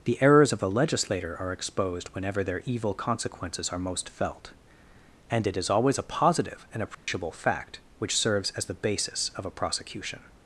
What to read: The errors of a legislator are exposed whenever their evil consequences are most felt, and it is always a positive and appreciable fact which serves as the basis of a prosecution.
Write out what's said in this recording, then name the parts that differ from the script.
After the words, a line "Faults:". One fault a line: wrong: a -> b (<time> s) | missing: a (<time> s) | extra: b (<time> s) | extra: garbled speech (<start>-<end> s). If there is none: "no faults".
The errors of a legislator are exposed whenever their evil consequences are most felt, and it is always a positive and appreciable fact which serves as the basis of a prosecution.
Faults:
no faults